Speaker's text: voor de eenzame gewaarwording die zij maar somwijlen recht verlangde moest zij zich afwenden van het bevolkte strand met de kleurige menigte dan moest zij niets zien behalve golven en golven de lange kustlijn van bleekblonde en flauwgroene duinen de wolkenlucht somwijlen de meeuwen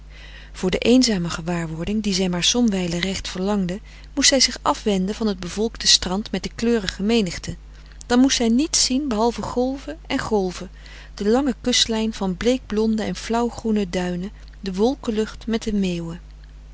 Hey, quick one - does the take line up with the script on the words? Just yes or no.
no